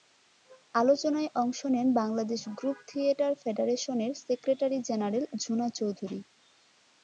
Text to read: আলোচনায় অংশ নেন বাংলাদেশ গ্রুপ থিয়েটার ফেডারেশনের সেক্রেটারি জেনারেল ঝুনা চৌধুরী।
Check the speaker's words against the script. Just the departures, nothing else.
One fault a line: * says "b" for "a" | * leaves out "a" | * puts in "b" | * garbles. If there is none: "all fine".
all fine